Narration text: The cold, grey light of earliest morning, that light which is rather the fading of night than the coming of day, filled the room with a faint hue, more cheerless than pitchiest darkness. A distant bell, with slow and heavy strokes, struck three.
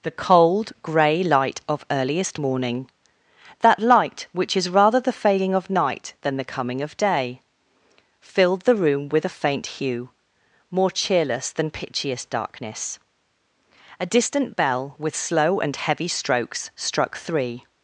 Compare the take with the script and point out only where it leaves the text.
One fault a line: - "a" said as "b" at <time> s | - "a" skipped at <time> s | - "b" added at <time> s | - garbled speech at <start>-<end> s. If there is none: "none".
- "fading" said as "failing" at 5.1 s